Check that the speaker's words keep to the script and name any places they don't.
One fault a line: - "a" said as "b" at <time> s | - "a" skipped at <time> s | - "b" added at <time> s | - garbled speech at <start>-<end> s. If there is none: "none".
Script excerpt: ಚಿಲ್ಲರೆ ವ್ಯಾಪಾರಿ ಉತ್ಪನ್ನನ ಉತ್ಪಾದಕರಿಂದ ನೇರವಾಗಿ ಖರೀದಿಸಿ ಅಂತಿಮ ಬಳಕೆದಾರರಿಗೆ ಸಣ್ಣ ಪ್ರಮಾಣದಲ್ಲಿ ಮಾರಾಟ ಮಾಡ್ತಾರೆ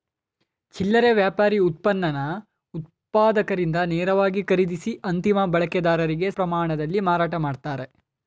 - "ಸಣ್ಣ" skipped at 6.3 s